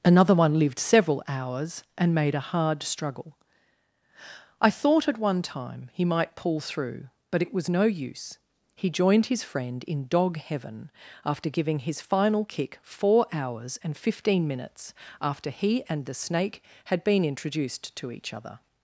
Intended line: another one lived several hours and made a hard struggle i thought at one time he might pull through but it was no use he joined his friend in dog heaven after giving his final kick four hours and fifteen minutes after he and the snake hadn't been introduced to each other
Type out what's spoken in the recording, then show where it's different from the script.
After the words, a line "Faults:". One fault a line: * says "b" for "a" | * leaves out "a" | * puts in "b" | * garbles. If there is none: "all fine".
another one lived several hours and made a hard struggle i thought at one time he might pull through but it was no use he joined his friend in dog heaven after giving his final kick four hours and fifteen minutes after he and the snake had been introduced to each other
Faults:
* says "had" for "hadn't"